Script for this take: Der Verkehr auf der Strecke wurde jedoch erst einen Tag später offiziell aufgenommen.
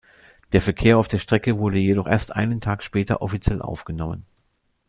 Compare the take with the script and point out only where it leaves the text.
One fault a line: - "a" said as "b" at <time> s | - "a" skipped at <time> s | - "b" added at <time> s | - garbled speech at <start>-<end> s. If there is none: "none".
none